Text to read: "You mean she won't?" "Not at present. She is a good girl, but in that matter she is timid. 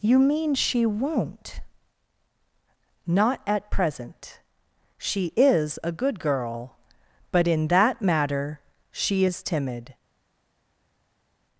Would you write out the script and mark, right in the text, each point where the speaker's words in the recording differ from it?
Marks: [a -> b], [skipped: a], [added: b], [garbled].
"You mean she won't?" "Not at present. She is a good girl, but in that matter she is timid.